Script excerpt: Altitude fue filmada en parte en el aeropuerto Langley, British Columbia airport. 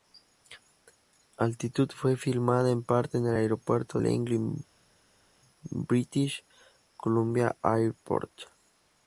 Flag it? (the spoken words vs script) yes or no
no